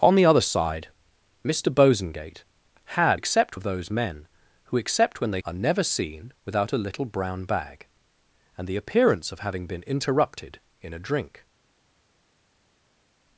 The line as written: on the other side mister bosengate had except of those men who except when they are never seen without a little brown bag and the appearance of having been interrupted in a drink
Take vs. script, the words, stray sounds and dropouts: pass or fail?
pass